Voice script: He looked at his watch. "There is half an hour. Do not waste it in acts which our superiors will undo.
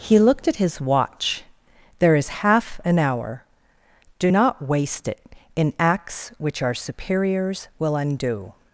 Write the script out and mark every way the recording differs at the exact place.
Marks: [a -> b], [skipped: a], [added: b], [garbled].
He looked at his watch. "There is half an hour. Do not waste it in acts which our superiors will undo.